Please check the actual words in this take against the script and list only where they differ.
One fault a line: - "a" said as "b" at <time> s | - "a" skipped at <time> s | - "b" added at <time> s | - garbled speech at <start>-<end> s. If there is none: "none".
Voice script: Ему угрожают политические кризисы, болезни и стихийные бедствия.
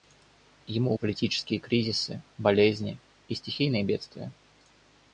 - "угрожают" skipped at 0.9 s